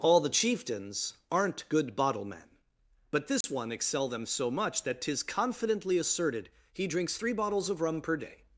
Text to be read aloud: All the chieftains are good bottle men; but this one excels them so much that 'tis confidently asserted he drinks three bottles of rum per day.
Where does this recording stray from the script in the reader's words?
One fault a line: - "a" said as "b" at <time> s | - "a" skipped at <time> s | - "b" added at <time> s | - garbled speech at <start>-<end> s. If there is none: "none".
- "are" said as "aren't" at 1.3 s
- "excels" said as "excel" at 3.7 s